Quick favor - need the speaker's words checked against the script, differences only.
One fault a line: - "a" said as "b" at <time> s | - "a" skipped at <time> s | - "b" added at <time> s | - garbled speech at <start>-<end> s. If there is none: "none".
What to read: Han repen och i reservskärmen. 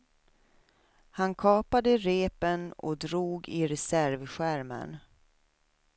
- "kapade" added at 1.4 s
- "drog" added at 3.0 s